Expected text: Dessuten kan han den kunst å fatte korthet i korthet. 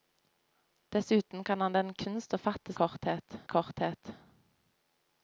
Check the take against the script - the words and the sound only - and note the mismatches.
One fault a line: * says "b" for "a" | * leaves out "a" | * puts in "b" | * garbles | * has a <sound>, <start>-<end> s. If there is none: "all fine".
all fine